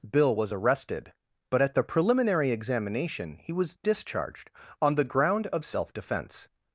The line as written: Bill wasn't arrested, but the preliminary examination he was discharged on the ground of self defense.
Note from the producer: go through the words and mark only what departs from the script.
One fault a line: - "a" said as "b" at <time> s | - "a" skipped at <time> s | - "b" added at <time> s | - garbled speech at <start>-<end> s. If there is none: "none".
- "wasn't" said as "was" at 0.3 s
- "at" added at 1.6 s